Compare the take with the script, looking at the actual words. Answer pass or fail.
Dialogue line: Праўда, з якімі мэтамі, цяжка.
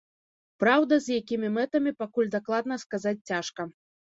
fail